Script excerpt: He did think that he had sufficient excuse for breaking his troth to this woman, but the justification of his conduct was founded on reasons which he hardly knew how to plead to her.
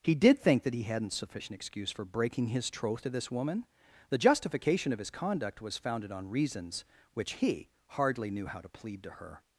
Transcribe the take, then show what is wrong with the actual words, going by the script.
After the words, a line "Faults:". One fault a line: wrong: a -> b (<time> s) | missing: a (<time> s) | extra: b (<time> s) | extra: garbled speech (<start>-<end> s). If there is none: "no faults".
He did think that he hadn't sufficient excuse for breaking his troth to this woman, the justification of his conduct was founded on reasons which he hardly knew how to plead to her.
Faults:
wrong: had -> hadn't (0.8 s)
missing: but (3.6 s)